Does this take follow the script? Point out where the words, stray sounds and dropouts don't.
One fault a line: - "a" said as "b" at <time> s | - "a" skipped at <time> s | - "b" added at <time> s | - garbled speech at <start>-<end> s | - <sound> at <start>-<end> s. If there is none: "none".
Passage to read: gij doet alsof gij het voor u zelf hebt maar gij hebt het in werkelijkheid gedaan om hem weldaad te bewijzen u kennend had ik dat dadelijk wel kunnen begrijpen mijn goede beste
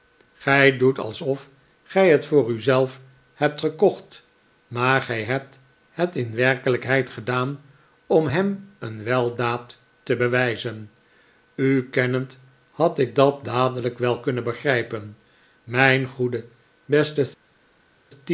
- "gekocht" added at 3.6 s
- "een" added at 8.8 s